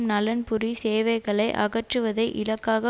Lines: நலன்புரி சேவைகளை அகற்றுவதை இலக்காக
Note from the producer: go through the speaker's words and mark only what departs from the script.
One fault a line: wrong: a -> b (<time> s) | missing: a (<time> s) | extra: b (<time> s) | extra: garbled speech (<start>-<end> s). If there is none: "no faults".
no faults